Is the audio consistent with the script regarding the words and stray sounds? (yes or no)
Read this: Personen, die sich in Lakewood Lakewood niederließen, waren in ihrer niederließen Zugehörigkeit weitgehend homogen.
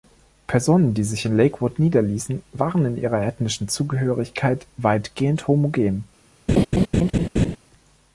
no